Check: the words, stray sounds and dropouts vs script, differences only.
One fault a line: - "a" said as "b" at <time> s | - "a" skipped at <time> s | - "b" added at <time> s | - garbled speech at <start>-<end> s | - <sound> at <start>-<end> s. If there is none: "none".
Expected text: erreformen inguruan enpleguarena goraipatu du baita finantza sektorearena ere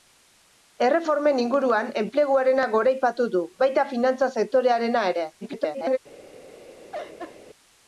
- garbled speech at 5.4-6.0 s
- laugh at 6.9-7.4 s